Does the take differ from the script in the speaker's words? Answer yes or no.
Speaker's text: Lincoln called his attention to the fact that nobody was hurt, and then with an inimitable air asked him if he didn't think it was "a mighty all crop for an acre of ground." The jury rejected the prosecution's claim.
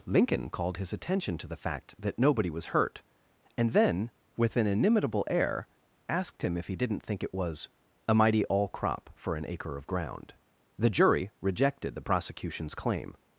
no